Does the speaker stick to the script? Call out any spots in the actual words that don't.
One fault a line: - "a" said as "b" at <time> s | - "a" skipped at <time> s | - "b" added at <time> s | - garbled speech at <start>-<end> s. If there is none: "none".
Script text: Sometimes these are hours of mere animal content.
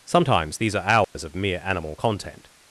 none